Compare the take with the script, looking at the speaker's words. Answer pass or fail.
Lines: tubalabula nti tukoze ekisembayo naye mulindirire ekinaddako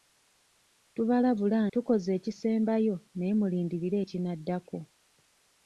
fail